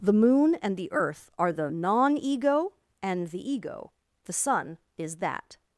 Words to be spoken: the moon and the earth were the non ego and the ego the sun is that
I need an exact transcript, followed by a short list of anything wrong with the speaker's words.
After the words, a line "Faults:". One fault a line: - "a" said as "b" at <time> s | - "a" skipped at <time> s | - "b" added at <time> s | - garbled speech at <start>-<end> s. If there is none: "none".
the moon and the earth are the non ego and the ego the sun is that
Faults:
- "were" said as "are" at 1.4 s